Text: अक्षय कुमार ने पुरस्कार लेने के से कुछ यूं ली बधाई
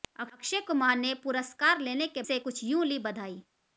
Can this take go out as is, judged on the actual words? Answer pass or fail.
pass